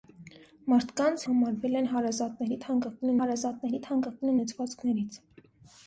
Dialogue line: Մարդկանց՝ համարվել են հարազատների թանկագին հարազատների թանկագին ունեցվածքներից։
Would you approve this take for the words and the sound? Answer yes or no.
yes